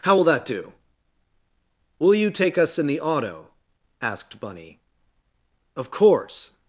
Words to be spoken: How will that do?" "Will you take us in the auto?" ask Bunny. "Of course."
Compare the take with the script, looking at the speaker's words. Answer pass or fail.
fail